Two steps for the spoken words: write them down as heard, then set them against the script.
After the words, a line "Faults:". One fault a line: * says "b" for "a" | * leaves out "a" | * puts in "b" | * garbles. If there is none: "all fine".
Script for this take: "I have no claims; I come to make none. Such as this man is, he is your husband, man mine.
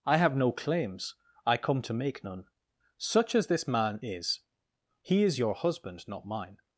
"I have no claims; I come to make none. Such as this man is, he is your husband, not mine.
Faults:
* says "not" for "man"